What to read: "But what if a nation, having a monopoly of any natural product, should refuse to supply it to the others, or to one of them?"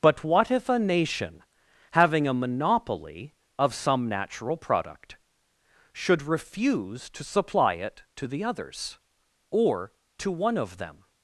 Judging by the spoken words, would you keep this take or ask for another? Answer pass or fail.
fail